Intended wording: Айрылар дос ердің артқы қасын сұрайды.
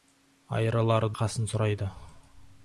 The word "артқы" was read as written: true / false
false